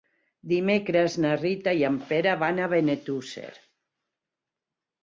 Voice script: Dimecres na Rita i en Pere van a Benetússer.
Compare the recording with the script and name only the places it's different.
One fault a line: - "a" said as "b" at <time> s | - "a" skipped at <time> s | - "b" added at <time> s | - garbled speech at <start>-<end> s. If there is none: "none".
none